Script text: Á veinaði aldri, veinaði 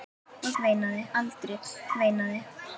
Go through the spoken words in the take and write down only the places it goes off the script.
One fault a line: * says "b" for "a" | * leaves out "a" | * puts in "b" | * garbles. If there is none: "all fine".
all fine